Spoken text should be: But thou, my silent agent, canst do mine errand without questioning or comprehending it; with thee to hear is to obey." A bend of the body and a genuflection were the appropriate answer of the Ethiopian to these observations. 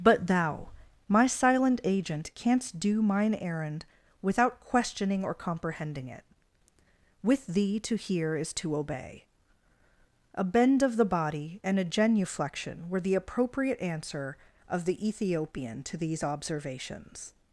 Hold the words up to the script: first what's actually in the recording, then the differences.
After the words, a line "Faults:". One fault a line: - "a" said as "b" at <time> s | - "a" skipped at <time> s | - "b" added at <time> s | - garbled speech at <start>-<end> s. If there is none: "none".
But thou, my silent agent, canst do mine errand without questioning or comprehending it; with thee to hear is to obey." A bend of the body and a genuflection were the appropriate answer of the Ethiopian to these observations.
Faults:
none